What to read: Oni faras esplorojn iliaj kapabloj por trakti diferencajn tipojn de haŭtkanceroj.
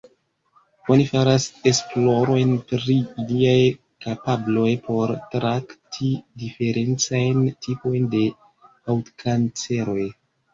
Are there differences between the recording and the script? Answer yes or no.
yes